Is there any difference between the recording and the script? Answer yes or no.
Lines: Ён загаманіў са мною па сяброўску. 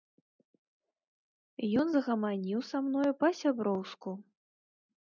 no